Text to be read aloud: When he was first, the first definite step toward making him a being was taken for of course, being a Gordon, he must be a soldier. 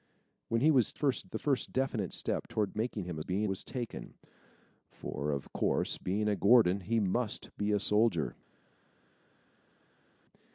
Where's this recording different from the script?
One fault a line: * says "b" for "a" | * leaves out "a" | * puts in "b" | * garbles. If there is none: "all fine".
all fine